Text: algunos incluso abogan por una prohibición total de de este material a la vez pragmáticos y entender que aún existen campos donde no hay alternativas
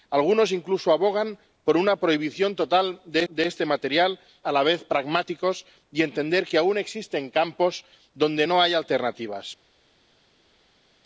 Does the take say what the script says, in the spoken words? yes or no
yes